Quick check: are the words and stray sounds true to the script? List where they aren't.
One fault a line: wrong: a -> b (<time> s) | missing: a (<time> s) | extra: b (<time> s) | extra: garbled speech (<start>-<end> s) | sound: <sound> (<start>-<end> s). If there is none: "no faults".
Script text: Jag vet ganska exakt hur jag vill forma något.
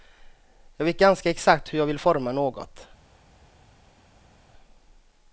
no faults